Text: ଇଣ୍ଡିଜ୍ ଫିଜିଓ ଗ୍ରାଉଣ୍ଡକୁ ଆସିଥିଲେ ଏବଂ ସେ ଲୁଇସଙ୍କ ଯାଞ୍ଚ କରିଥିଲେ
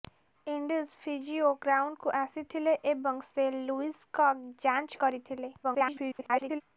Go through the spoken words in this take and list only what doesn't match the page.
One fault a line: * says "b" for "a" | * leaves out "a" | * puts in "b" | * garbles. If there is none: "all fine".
* garbles